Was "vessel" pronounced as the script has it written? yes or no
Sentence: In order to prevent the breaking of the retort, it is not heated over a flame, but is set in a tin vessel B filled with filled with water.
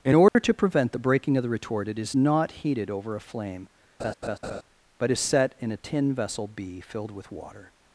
yes